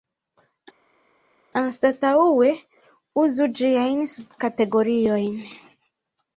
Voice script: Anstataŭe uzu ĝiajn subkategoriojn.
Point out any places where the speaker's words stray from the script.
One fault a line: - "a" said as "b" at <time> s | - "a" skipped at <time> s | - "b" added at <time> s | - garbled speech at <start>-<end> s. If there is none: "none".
none